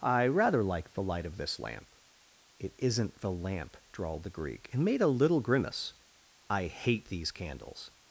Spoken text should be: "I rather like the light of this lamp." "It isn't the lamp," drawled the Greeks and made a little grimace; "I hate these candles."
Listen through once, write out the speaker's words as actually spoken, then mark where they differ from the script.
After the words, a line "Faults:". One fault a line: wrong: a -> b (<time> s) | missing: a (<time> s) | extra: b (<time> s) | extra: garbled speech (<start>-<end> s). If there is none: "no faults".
"I rather like the light of this lamp." "It isn't the lamp," drawled the Greek and made a little grimace; "I hate these candles."
Faults:
wrong: Greeks -> Greek (4.3 s)